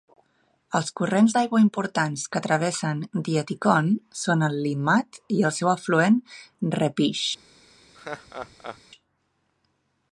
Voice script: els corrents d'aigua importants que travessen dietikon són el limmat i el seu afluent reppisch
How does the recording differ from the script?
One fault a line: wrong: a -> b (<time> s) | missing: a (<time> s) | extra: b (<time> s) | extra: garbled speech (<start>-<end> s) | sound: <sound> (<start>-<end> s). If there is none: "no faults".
sound: laugh (7.9-8.8 s)